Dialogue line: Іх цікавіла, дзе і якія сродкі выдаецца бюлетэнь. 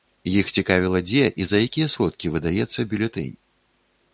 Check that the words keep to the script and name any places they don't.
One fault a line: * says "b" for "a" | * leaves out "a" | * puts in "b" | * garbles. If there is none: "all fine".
* puts in "за"